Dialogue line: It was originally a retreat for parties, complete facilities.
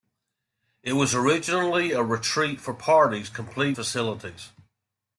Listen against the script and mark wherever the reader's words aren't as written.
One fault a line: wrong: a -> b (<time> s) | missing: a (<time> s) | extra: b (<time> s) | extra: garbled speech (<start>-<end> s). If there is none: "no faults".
no faults